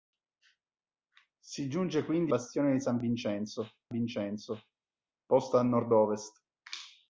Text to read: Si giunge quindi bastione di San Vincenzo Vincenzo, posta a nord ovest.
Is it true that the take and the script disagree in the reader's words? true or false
false